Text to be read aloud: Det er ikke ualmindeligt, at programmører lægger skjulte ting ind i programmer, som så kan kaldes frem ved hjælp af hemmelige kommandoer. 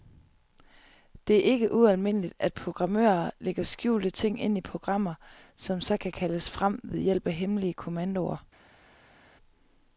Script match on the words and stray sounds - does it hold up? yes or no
yes